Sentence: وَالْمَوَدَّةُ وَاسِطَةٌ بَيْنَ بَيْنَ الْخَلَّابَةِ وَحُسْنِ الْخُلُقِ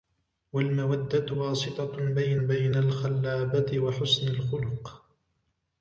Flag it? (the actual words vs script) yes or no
no